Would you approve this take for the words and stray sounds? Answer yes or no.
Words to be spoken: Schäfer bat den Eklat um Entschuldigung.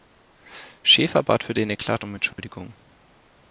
no